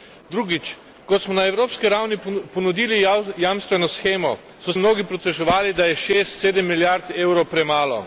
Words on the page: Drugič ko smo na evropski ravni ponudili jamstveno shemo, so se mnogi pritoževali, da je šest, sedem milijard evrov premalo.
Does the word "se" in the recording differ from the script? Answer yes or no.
yes